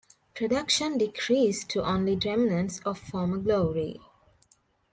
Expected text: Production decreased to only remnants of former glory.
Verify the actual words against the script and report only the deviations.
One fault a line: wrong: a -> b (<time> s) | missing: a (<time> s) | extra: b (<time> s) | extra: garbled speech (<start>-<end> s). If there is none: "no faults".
no faults